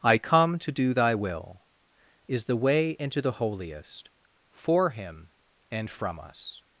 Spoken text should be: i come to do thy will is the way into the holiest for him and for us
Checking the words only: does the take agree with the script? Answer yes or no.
no